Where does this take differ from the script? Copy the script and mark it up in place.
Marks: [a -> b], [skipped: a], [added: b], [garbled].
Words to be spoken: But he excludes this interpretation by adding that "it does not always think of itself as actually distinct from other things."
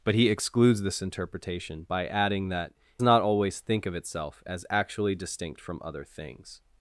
But he excludes this interpretation by adding that [skipped: "it does] not always think of itself as actually distinct from other things."